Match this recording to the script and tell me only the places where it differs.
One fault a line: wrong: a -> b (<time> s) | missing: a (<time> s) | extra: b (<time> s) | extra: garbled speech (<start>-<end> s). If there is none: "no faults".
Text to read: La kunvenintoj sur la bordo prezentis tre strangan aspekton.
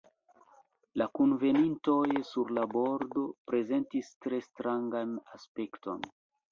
no faults